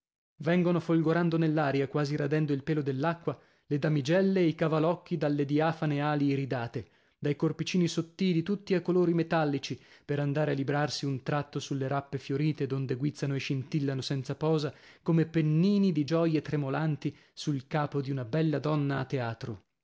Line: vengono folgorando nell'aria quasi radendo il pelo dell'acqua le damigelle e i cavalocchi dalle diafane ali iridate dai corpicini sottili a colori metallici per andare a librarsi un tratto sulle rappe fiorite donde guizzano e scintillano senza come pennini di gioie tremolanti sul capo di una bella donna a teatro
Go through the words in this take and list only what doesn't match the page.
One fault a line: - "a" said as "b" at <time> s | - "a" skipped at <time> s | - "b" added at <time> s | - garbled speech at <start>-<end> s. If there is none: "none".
- "tutti" added at 8.4 s
- "posa" added at 14.4 s